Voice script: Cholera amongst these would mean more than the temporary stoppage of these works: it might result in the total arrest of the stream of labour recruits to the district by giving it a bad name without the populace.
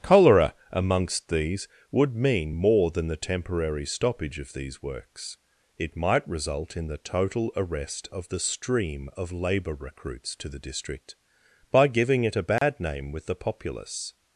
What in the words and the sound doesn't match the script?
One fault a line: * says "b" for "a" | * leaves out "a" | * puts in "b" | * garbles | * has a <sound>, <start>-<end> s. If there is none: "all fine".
* has a dropout, 12.6-12.6 s
* says "with" for "without"